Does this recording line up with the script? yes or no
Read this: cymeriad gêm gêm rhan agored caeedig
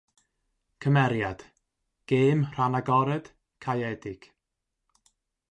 no